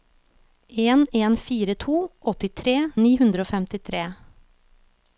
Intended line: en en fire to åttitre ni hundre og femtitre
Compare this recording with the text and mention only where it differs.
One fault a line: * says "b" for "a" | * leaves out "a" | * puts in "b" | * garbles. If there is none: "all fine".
all fine